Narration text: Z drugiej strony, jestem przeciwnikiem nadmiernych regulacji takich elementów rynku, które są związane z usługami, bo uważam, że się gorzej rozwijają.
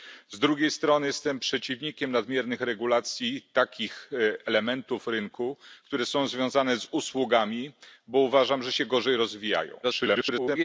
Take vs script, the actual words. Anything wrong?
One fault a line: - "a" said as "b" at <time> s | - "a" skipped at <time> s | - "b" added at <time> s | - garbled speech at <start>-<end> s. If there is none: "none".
- garbled speech at 9.8-10.6 s